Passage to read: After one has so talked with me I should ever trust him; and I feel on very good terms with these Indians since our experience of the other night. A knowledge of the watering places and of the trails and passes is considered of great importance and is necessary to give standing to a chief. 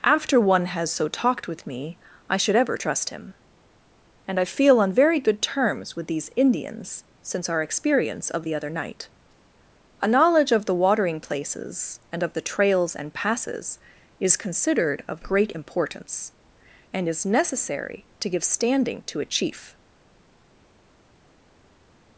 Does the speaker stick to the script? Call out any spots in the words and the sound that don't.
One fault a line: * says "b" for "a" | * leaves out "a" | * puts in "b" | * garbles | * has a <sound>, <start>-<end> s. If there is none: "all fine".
all fine